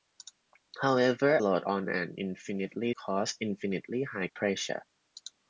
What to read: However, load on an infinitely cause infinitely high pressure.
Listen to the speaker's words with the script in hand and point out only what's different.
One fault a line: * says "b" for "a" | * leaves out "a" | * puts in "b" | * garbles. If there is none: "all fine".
all fine